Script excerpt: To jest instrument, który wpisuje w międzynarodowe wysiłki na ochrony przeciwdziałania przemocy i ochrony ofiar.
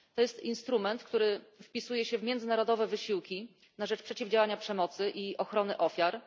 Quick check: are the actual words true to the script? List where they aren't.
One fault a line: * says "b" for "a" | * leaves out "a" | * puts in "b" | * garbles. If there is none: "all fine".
* puts in "się"
* says "rzecz" for "ochrony"